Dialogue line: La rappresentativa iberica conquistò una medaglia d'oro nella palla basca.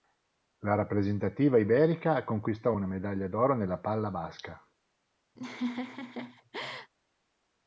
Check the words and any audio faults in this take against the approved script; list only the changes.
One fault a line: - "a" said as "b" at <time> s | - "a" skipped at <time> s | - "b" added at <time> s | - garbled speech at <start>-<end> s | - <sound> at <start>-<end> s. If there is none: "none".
- laugh at 5.4-6.9 s